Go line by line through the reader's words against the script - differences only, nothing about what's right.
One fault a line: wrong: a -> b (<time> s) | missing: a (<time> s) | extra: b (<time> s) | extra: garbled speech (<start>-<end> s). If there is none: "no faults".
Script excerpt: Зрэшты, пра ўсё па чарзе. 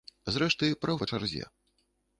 missing: ўсё (0.9 s)